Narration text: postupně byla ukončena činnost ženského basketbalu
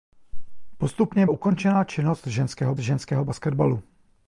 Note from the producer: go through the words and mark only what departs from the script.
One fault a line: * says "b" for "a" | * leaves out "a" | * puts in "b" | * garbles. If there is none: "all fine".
* leaves out "byla"
* puts in "ženského"